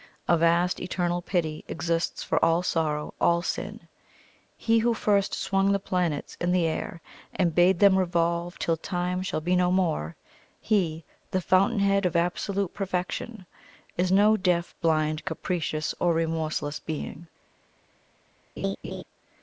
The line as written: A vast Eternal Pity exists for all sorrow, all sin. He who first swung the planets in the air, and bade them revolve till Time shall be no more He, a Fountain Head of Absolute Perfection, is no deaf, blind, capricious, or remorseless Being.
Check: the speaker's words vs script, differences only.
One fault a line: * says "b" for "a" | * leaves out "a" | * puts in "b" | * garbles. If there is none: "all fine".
* says "the" for "a"